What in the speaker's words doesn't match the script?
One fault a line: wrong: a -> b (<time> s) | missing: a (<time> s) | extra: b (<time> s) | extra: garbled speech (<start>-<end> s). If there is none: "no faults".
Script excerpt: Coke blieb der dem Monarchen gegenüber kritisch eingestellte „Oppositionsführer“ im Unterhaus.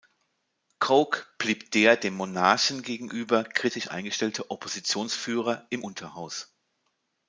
no faults